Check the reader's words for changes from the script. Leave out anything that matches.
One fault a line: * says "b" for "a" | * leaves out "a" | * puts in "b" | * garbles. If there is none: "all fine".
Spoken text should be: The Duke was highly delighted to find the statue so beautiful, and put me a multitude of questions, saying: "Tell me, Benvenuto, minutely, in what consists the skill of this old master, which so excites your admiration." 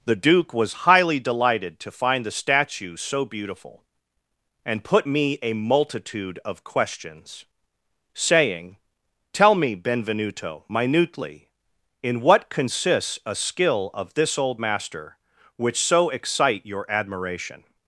* says "a" for "the"
* says "excite" for "excites"